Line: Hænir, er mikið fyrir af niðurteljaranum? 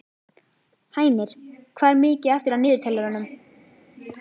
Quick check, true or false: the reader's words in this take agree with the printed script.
false